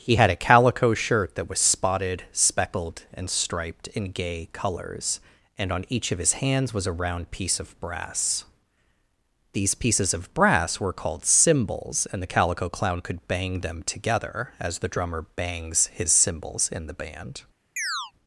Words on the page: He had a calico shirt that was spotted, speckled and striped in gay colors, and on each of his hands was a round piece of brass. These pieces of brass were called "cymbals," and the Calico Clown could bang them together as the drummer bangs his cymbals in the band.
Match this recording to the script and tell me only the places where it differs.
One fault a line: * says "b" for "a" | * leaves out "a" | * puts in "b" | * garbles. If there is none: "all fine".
all fine